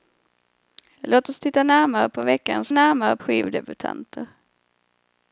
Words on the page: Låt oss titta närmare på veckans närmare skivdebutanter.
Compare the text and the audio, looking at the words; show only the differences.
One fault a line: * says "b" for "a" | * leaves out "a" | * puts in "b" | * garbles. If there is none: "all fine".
all fine